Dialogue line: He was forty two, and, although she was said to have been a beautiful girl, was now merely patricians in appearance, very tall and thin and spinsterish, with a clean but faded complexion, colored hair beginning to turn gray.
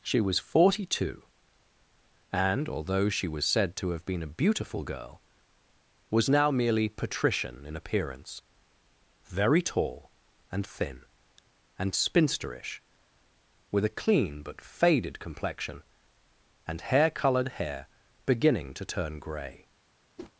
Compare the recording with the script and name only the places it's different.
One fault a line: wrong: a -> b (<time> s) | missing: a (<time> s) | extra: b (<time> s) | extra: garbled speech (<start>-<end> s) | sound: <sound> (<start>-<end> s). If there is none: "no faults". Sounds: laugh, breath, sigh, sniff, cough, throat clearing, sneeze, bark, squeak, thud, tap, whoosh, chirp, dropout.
wrong: He -> She (0.0 s)
wrong: patricians -> patrician (6.9 s)
extra: and hair (16.7 s)
sound: whoosh (20.2-20.3 s)